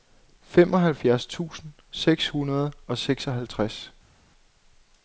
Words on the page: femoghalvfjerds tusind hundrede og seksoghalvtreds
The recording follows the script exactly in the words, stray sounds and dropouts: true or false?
false